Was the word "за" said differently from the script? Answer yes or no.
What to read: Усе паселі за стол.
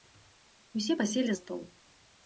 yes